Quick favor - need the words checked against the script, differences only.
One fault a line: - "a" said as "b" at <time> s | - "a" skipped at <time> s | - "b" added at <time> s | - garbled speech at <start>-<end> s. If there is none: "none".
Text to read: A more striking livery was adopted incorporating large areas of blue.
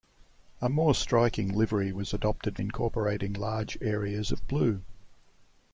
none